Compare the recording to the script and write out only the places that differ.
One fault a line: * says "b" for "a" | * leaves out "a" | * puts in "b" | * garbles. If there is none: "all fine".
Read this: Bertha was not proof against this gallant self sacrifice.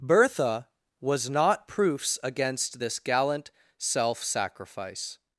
* says "proofs" for "proof"